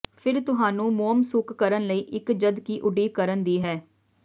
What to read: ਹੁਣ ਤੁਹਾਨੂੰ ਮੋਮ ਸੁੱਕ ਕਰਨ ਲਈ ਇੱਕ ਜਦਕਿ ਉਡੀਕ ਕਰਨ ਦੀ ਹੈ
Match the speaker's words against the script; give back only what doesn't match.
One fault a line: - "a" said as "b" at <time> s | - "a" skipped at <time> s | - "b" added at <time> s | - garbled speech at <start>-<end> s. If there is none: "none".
- "ਹੁਣ" said as "ਫਿਰ" at 0.2 s